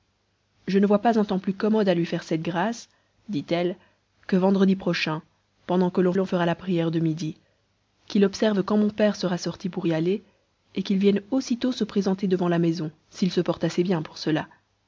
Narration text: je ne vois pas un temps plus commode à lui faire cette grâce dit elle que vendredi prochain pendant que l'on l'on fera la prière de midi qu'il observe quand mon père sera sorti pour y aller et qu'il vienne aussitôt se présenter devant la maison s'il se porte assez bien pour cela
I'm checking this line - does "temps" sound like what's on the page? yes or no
yes